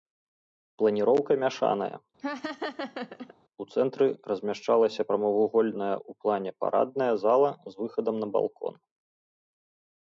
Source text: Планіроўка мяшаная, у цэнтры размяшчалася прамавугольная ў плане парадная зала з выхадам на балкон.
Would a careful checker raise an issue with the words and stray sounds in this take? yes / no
yes